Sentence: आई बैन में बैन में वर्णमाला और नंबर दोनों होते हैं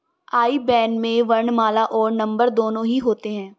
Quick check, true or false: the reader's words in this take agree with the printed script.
false